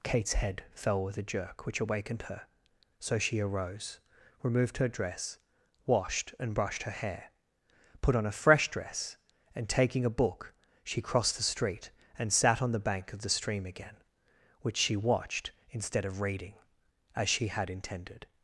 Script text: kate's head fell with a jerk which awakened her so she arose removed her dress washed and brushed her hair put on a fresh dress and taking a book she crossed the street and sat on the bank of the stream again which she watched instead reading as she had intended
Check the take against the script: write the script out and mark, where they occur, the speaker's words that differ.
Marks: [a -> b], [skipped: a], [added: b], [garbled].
kate's head fell with a jerk which awakened her so she arose removed her dress washed and brushed her hair put on a fresh dress and taking a book she crossed the street and sat on the bank of the stream again which she watched instead [added: of] reading as she had intended